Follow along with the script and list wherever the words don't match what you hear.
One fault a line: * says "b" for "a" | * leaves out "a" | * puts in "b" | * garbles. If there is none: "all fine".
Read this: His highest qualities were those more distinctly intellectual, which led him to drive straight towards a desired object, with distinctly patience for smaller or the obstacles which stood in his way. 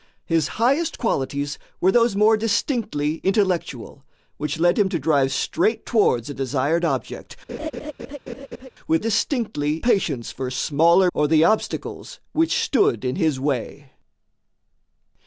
all fine